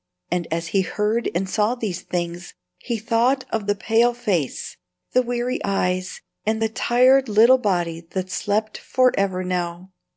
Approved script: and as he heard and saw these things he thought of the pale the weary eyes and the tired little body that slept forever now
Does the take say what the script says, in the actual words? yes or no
no